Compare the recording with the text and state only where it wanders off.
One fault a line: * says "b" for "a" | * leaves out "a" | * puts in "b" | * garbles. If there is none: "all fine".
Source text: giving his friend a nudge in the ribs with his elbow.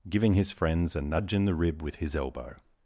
* says "friends" for "friend"
* says "rib" for "ribs"